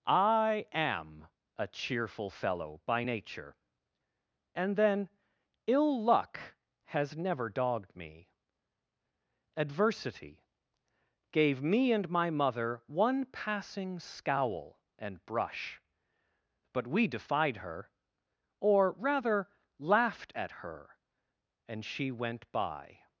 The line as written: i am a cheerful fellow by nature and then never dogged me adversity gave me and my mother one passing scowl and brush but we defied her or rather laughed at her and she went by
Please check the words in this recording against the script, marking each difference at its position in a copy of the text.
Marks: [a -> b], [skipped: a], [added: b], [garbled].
i am a cheerful fellow by nature and then [added: ill luck has] never dogged me adversity gave me and my mother one passing scowl and brush but we defied her or rather laughed at her and she went by